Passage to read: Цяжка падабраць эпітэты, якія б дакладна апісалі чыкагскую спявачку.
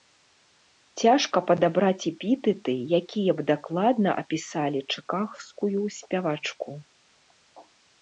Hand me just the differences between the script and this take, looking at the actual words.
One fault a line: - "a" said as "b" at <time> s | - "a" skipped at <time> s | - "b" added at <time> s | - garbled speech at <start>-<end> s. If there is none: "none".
none